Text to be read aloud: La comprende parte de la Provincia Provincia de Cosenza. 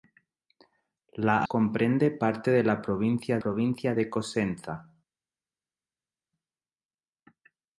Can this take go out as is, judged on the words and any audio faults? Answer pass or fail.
pass